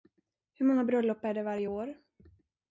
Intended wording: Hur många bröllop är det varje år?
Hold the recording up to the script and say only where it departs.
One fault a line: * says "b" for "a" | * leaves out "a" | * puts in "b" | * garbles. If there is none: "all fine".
all fine